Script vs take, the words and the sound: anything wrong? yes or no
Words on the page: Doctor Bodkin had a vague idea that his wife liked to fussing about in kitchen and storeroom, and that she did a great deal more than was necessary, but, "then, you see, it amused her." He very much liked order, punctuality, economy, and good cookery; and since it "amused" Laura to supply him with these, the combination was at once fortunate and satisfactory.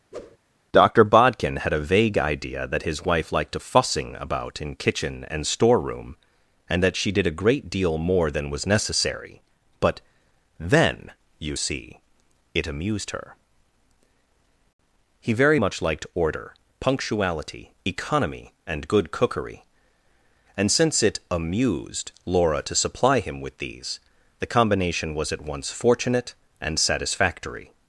yes